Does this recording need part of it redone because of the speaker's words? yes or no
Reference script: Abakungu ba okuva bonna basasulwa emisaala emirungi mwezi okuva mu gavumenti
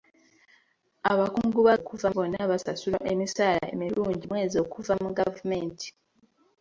no